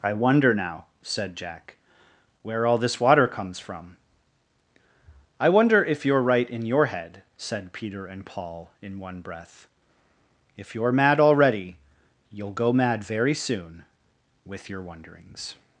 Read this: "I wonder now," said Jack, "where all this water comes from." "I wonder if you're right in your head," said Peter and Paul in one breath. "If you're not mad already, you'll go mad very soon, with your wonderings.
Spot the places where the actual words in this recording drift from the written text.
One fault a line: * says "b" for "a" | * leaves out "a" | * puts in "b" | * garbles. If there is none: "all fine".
* leaves out "not"